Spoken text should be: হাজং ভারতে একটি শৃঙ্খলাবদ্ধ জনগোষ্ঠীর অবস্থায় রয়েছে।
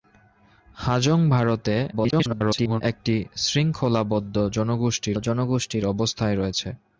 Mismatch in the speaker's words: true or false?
true